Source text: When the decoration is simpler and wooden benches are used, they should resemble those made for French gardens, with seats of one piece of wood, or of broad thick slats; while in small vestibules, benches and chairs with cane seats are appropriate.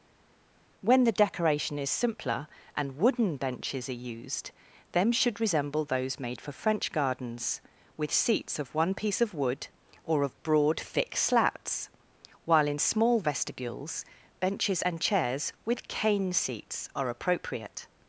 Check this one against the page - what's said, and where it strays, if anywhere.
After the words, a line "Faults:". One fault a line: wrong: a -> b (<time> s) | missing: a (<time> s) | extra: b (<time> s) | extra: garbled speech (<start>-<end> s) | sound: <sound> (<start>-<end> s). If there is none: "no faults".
When the decoration is simpler and wooden benches are used, them should resemble those made for French gardens, with seats of one piece of wood, or of broad thick slats; while in small vestibules, benches and chairs with cane seats are appropriate.
Faults:
wrong: they -> them (4.9 s)